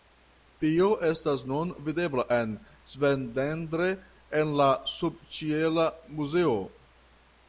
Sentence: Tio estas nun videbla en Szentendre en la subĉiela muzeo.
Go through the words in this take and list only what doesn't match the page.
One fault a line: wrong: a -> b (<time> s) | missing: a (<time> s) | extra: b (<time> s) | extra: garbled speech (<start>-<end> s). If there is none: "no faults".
no faults